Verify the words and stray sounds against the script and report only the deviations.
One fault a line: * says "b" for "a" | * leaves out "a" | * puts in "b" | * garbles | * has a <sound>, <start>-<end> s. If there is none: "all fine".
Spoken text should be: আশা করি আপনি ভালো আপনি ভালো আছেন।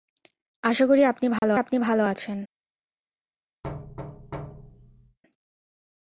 * has a dropout, 1.4-1.4 s
* has a thud, 3.6-5.2 s